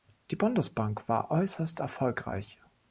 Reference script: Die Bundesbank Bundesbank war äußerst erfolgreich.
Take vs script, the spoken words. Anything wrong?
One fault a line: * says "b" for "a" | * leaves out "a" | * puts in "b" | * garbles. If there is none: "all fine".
* leaves out "Bundesbank"